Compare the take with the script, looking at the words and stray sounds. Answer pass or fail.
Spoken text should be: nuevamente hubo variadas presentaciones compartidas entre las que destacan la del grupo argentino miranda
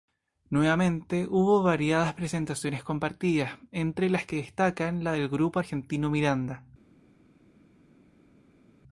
pass